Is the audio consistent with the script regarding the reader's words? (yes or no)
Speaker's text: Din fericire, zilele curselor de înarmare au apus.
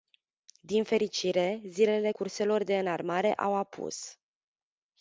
yes